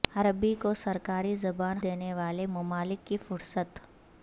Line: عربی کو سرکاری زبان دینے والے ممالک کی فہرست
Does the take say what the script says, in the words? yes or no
yes